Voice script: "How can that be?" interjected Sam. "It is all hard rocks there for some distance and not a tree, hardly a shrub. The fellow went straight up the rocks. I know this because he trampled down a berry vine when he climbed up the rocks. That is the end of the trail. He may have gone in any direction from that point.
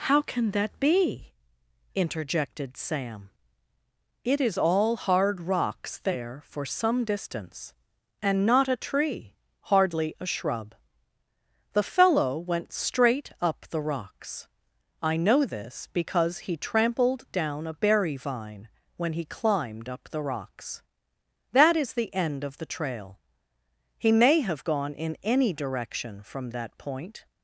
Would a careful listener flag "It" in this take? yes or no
no